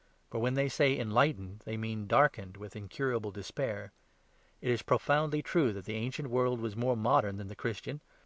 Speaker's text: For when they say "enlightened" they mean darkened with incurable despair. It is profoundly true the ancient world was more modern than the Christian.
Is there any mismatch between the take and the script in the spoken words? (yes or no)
yes